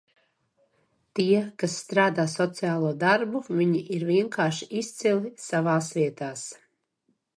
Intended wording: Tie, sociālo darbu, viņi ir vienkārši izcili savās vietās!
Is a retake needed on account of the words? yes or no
yes